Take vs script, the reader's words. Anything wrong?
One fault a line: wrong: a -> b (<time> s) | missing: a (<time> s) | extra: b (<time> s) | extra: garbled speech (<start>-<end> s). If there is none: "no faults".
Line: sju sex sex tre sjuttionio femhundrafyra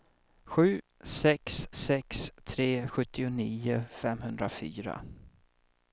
no faults